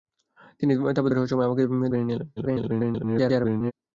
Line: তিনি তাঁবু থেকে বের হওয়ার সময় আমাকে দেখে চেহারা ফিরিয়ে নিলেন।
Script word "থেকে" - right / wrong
wrong